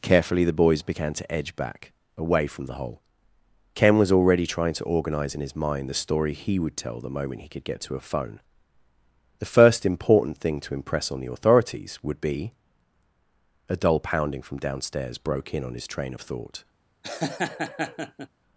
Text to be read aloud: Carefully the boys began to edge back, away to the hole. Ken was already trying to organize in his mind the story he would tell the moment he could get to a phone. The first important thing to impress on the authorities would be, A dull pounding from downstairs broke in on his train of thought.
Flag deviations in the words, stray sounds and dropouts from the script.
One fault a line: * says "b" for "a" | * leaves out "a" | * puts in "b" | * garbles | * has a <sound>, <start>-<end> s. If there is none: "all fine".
* says "from" for "to"
* has a laugh, 17.0-18.3 s